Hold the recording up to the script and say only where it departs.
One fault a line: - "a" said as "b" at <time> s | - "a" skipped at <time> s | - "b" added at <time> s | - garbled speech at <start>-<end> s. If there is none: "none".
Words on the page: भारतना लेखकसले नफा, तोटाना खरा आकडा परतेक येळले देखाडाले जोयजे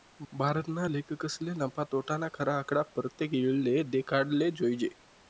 none